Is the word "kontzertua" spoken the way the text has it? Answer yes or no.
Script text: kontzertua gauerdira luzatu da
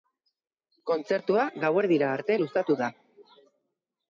yes